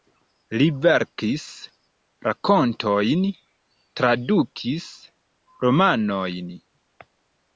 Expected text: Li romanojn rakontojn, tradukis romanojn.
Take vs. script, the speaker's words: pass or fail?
fail